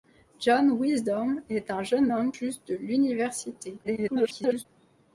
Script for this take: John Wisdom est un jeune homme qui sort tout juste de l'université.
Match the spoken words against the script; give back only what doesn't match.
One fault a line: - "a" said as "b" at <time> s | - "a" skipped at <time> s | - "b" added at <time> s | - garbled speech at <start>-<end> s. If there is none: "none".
- "qui sort tout" skipped at 2.3 s
- garbled speech at 3.8-4.7 s